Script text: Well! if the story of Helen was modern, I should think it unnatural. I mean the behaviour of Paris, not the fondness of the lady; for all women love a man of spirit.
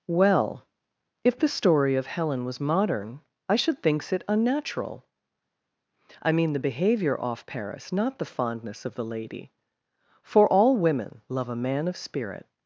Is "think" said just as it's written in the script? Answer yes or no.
no